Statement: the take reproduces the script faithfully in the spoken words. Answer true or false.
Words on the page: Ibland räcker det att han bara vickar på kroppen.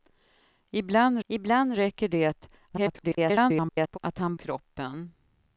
false